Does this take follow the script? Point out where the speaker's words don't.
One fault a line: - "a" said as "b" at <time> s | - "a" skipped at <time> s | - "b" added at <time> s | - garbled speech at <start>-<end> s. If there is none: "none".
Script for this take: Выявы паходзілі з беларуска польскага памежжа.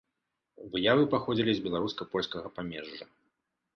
none